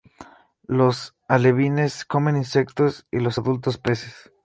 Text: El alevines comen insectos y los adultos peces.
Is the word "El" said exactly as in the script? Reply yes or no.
no